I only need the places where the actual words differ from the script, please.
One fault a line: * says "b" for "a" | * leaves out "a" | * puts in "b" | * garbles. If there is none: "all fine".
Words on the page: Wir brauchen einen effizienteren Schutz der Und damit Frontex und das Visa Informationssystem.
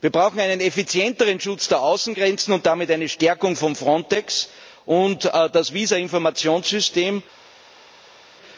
* puts in "Außengrenzen"
* puts in "eine Stärkung von"